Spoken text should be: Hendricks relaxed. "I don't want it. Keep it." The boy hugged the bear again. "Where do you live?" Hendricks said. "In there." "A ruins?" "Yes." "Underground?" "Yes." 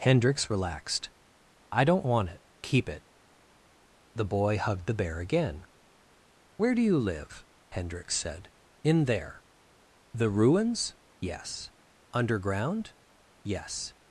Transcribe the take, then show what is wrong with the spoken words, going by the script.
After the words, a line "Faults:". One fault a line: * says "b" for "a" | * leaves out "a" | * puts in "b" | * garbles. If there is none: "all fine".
Hendricks relaxed. "I don't want it. Keep it." The boy hugged the bear again. "Where do you live?" Hendricks said. "In there." "The ruins?" "Yes." "Underground?" "Yes."
Faults:
* says "The" for "A"